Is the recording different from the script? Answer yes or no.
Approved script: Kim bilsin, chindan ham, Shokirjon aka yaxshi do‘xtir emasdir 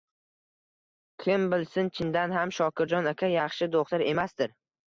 no